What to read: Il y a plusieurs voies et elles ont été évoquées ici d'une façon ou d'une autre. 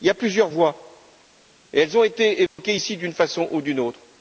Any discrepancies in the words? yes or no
no